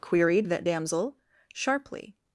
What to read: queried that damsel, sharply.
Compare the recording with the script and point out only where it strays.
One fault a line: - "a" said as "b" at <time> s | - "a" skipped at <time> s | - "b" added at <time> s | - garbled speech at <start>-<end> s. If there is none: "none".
none